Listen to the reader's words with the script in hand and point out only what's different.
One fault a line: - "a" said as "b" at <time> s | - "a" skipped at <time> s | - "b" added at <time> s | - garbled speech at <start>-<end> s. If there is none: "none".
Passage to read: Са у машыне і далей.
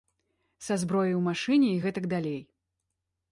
- "зброяй" added at 0.8 s
- "гэтак" added at 1.8 s